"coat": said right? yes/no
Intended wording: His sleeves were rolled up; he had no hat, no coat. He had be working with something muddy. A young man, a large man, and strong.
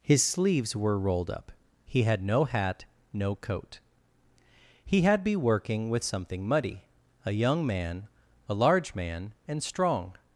yes